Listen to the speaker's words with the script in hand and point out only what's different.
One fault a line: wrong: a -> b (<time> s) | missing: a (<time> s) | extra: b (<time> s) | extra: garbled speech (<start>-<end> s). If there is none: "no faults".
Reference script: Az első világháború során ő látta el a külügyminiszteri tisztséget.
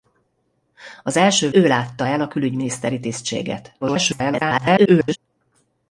missing: világháború során (1.5 s)
extra: garbled speech (3.8-5.2 s)